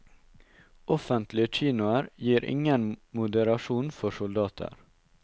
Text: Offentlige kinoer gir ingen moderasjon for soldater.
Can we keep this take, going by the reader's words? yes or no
yes